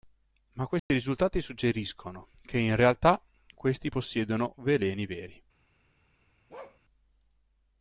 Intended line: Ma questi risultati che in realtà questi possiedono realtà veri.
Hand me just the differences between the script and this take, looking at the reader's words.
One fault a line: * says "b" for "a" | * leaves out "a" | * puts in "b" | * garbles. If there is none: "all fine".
* puts in "suggeriscono"
* says "veleni" for "realtà"